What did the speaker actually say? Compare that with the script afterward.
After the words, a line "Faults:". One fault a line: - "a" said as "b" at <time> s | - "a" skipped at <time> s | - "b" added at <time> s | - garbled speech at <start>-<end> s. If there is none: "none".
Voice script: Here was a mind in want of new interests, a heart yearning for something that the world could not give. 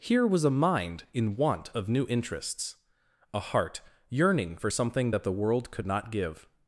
Here was a mind in want of new interests, a heart yearning for something that the world could not give.
Faults:
none